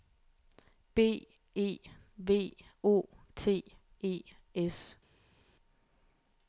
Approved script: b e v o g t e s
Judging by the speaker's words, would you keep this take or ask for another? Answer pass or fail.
fail